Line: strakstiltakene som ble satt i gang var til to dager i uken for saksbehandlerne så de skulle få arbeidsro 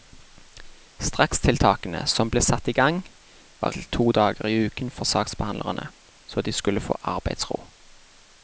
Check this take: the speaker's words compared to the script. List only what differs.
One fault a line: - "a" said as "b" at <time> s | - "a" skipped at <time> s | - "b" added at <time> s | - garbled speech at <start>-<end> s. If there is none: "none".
none